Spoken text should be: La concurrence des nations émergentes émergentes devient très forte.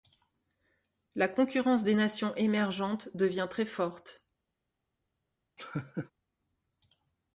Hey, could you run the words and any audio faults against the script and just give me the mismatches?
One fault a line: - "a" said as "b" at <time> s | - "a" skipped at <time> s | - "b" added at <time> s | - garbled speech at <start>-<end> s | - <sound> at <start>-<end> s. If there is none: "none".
- "émergentes" skipped at 3.1 s
- laugh at 5.6-6.1 s